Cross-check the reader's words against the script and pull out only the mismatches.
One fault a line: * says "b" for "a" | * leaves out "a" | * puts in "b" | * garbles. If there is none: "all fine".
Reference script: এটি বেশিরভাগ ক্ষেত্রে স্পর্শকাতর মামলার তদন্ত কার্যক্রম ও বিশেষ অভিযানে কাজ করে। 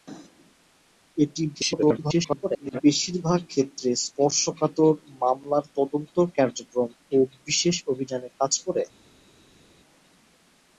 * garbles